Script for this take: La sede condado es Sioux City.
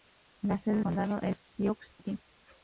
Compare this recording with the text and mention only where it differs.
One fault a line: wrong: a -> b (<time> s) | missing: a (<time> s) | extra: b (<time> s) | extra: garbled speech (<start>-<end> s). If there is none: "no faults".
no faults